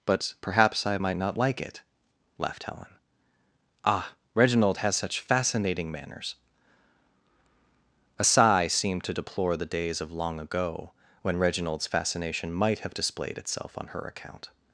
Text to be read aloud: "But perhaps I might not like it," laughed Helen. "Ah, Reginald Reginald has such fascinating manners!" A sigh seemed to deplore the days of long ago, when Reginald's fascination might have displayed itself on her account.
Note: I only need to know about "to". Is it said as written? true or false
true